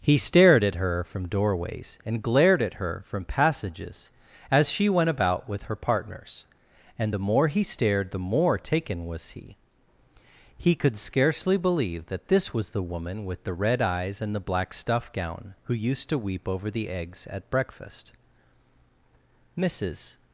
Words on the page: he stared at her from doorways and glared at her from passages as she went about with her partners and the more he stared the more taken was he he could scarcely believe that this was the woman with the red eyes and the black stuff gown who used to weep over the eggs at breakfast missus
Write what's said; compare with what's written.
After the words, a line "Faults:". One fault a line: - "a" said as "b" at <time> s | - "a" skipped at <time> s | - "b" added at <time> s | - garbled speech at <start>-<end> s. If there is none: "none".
he stared at her from doorways and glared at her from passages as she went about with her partners and the more he stared the more taken was he he could scarcely believe that this was the woman with the red eyes and the black stuff gown who used to weep over the eggs at breakfast missus
Faults:
none